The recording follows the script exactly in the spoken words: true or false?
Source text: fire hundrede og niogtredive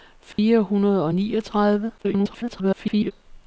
false